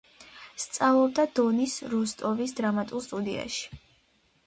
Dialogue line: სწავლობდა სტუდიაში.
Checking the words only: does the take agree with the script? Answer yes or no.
no